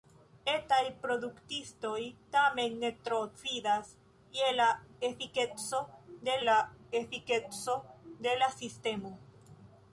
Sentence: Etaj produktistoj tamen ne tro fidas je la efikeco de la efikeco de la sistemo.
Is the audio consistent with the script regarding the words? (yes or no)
yes